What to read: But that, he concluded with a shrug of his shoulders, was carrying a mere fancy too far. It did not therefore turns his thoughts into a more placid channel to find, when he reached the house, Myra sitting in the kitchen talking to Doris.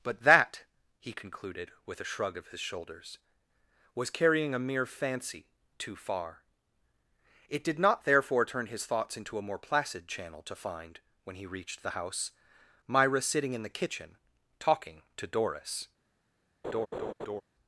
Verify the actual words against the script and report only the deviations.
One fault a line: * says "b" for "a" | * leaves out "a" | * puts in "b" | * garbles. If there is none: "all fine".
* says "turn" for "turns"